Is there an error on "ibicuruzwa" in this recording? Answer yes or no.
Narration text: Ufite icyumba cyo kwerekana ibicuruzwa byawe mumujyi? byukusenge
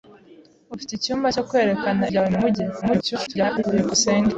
yes